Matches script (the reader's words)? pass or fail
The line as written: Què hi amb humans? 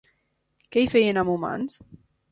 fail